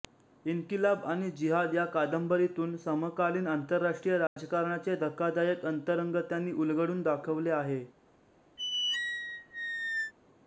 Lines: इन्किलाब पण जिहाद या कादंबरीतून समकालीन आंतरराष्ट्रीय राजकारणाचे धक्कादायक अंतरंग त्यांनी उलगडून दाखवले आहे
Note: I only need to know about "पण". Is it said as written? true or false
false